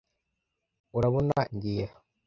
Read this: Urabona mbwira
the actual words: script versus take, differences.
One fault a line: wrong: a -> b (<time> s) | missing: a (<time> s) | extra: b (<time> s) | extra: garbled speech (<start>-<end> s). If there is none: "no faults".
no faults